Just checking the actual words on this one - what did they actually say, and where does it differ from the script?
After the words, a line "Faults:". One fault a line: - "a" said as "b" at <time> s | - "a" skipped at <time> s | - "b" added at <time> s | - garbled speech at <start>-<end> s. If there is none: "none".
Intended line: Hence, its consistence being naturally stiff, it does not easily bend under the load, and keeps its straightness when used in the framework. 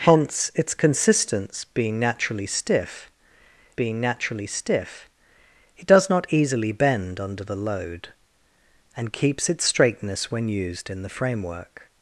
Hence, its consistence being naturally stiff being naturally stiff, it does not easily bend under the load, and keeps its straightness when used in the framework.
Faults:
- "being naturally stiff" added at 3.8 s